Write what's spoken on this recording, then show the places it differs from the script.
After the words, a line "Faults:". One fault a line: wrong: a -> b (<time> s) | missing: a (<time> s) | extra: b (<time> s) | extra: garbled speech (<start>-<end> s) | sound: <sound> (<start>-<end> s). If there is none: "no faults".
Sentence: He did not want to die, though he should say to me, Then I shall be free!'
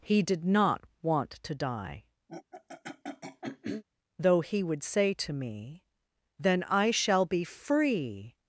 He did not want to die, though he would say to me, Then I shall be free!'
Faults:
sound: throat clearing (2.3-3.8 s)
wrong: should -> would (4.6 s)